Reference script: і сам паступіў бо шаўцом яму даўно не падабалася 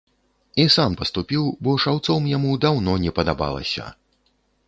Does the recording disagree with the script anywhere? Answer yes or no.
no